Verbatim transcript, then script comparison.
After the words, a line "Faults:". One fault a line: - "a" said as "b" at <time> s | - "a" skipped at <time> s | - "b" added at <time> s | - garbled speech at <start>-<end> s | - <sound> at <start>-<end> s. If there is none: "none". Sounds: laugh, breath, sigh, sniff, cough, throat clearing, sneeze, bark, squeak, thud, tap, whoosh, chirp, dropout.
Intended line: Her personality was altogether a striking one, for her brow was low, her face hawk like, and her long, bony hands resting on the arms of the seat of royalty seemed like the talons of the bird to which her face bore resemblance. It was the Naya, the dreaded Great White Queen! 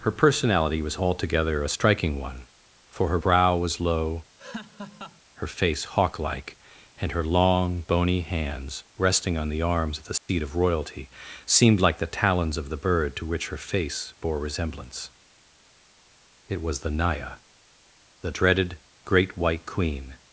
Her personality was altogether a striking one, for her brow was low, her face hawk like, and her long, bony hands resting on the arms of the seat of royalty seemed like the talons of the bird to which her face bore resemblance. It was the Naya, the dreaded Great White Queen!
Faults:
- laugh at 4.4-5.2 s
- dropout at 10.2-10.3 s